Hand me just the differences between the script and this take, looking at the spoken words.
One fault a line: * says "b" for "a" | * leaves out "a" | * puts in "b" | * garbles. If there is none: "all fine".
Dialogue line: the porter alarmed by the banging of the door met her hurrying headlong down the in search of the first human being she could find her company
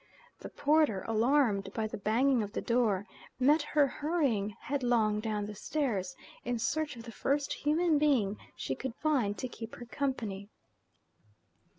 * puts in "stairs"
* puts in "to keep"